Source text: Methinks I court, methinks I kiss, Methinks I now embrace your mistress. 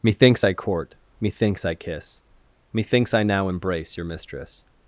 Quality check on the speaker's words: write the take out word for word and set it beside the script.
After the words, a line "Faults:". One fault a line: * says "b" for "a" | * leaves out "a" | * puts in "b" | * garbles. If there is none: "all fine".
Methinks I court, methinks I kiss, Methinks I now embrace your mistress.
Faults:
all fine